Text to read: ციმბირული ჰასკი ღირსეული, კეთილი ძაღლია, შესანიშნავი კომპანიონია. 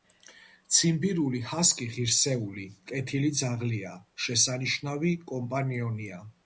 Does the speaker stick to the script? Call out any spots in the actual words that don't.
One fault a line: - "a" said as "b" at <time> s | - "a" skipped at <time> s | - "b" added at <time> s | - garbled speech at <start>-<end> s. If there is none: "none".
none